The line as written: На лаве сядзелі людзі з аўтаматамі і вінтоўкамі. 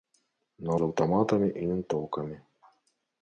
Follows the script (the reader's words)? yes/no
no